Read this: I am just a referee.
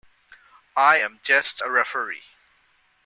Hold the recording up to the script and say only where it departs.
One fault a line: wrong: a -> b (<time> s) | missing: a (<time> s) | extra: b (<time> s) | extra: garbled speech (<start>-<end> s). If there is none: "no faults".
no faults